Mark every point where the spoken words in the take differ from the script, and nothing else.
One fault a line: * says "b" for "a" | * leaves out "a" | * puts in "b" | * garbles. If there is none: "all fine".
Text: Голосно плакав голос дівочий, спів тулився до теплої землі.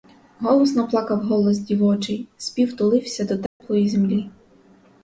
all fine